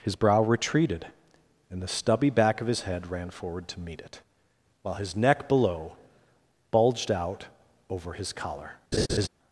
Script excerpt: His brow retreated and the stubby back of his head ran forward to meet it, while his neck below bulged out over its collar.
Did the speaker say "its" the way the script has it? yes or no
no